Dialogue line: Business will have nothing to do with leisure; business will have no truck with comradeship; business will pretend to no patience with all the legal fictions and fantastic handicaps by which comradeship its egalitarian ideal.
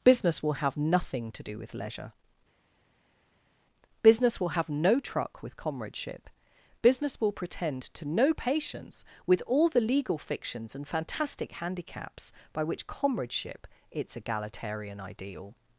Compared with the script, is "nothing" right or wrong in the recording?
right